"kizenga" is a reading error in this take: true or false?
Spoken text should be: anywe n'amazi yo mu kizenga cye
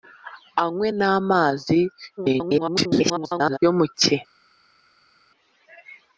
true